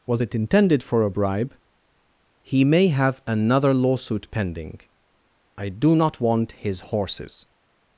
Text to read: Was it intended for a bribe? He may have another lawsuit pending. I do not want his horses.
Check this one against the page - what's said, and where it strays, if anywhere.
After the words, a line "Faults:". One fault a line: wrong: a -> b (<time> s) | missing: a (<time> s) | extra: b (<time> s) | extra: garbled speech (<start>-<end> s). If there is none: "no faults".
Was it intended for a bribe? He may have another lawsuit pending. I do not want his horses.
Faults:
no faults